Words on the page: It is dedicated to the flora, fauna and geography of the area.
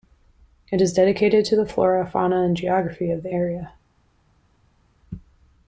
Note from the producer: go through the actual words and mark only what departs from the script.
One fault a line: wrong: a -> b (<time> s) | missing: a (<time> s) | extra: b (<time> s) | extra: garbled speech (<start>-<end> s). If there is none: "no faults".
no faults